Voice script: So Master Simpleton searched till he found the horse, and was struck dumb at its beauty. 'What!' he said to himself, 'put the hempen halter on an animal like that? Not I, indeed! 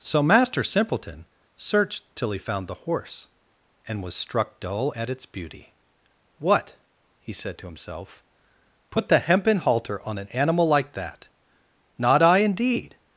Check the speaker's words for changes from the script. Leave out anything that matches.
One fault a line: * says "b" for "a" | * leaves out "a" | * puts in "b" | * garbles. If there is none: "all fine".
* says "dull" for "dumb"